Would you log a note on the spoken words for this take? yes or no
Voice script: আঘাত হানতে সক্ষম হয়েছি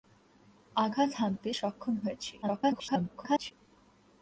yes